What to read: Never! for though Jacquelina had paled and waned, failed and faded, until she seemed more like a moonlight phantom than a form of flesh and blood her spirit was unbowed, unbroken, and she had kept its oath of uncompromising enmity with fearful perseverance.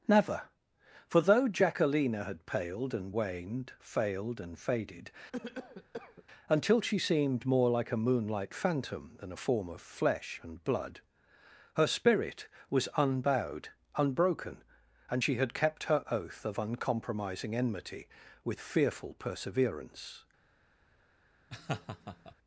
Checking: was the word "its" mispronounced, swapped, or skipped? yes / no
yes